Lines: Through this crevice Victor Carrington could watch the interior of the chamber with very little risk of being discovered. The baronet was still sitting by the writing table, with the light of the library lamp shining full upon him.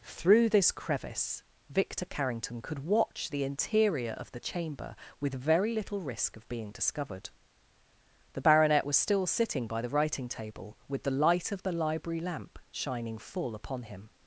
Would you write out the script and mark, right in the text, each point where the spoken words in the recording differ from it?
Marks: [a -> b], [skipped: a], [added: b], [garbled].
Through this crevice Victor Carrington could watch the interior of the chamber with very little risk of being discovered. The baronet was still sitting by the writing table, with the light of the library lamp shining full upon him.